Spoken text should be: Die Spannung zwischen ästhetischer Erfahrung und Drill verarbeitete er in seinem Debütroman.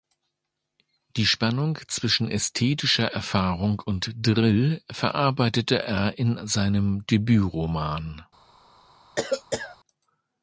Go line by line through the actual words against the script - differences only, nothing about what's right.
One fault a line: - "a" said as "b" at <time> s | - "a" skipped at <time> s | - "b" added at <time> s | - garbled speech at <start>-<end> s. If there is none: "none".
none